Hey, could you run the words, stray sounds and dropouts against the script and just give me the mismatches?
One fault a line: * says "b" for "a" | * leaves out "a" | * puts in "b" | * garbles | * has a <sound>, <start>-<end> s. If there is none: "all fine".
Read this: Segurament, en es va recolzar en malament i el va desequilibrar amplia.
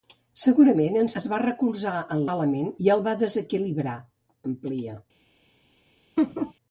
* has a laugh, 6.2-6.5 s